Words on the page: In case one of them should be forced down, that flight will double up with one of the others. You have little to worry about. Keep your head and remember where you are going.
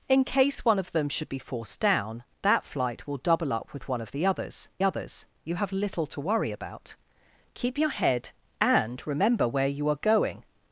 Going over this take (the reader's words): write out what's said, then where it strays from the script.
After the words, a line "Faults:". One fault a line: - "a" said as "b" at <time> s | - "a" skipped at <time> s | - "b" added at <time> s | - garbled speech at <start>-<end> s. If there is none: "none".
In case one of them should be forced down, that flight will double up with one of the others others. You have little to worry about. Keep your head and remember where you are going.
Faults:
- "others" added at 4.8 s